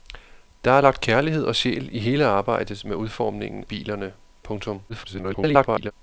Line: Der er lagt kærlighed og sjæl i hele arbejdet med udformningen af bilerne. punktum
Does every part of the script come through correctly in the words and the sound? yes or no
no